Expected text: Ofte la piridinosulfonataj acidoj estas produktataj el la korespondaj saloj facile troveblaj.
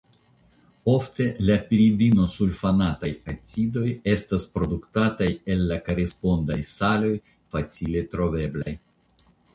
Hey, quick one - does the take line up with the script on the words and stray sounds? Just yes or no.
no